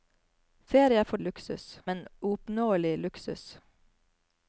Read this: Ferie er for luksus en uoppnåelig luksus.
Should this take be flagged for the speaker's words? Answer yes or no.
no